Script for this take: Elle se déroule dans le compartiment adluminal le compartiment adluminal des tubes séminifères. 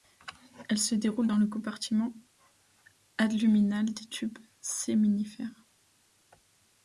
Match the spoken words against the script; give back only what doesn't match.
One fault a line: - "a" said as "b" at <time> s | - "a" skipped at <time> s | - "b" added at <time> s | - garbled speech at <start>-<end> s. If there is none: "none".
- "le compartiment adluminal" skipped at 3.9 s